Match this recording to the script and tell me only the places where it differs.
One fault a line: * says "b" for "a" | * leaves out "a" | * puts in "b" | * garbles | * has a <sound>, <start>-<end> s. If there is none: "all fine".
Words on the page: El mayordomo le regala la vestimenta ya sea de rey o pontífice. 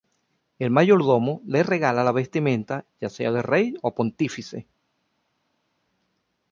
all fine